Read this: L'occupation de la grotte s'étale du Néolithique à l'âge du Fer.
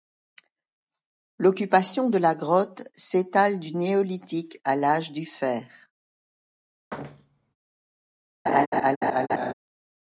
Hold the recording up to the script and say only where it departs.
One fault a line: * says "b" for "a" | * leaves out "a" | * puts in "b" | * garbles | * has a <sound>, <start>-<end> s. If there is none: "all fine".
* has a thud, 6.9-7.5 s
* has a laugh, 8.5-9.5 s